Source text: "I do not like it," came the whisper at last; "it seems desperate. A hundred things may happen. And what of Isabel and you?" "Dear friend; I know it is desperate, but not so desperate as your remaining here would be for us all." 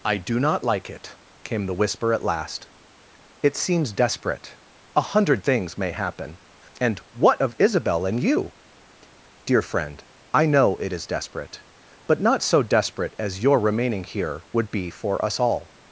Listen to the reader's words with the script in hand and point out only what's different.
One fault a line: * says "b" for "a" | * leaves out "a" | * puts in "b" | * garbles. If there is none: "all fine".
all fine